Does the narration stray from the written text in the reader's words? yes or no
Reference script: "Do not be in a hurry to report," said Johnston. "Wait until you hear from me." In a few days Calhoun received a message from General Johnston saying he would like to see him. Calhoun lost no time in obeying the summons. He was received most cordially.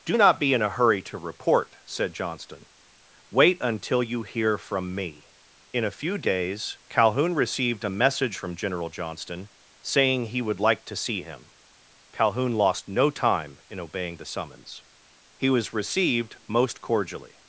no